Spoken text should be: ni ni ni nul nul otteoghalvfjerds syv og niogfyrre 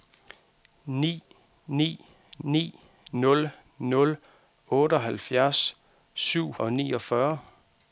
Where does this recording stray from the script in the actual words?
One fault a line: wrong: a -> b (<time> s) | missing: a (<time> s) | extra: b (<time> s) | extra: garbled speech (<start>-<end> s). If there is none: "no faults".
no faults